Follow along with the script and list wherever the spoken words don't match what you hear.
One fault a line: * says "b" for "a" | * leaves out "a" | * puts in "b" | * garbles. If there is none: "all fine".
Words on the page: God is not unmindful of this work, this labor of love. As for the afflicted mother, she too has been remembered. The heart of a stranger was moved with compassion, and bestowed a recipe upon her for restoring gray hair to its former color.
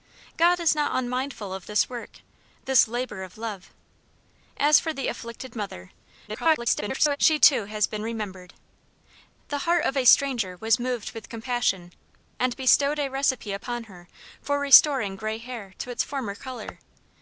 * garbles